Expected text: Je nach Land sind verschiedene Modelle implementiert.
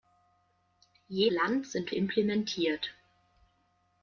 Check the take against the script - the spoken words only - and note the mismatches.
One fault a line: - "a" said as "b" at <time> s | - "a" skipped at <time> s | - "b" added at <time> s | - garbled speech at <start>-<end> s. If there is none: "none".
- "nach" skipped at 1.3 s
- "verschiedene Modelle" skipped at 1.9 s